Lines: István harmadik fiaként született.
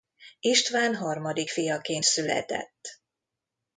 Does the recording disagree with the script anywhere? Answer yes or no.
no